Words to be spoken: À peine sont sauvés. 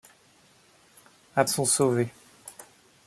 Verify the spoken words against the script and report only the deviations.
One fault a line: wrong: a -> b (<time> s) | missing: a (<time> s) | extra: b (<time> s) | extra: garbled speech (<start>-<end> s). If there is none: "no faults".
missing: peine (1.4 s)